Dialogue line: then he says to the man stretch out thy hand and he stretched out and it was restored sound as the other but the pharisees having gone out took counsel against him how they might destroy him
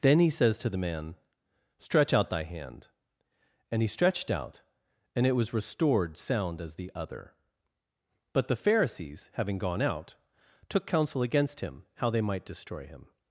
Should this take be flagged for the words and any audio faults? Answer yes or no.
no